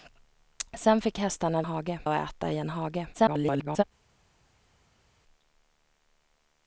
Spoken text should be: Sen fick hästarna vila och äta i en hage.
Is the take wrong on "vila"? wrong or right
wrong